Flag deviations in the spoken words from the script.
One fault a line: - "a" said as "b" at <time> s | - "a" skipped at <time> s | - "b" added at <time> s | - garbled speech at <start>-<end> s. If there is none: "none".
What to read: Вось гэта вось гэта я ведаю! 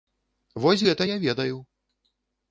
- "вось гэта" skipped at 1.1 s